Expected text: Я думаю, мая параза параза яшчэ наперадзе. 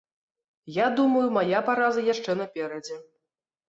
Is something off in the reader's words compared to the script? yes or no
yes